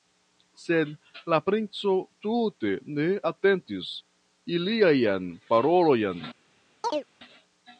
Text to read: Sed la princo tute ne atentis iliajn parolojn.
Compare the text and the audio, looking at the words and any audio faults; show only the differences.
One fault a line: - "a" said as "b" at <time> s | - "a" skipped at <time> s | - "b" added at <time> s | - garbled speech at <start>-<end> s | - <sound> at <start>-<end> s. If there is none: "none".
- chirp at 6.8-7.1 s